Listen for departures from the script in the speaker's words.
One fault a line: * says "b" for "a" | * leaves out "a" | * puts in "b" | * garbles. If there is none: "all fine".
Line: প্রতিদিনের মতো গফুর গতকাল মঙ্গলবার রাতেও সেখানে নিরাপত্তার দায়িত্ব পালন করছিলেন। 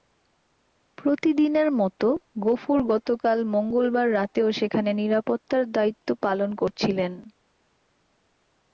all fine